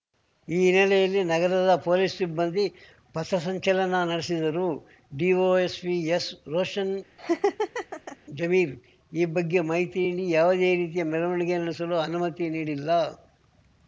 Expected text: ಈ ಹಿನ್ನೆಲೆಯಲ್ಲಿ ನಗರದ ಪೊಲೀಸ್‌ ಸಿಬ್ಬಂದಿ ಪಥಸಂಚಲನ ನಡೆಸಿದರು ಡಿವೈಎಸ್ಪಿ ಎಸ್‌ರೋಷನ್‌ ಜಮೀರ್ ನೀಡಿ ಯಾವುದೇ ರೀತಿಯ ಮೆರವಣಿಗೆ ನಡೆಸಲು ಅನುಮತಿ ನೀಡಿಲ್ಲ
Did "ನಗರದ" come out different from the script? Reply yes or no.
no